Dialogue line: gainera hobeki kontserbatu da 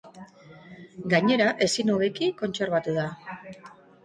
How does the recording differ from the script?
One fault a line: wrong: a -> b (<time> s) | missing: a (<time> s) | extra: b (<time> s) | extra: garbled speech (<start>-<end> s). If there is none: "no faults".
extra: ezin (1.7 s)